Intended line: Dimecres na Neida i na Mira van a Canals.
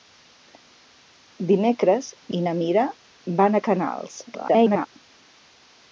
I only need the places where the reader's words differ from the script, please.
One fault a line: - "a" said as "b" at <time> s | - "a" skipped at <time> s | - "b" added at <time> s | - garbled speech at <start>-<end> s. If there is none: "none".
- "na Neida" skipped at 2.1 s
- garbled speech at 4.3-4.9 s